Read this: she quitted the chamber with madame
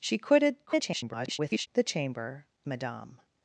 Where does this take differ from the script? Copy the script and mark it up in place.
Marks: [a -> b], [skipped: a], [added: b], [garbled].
she quitted [garbled] the chamber [skipped: with] madame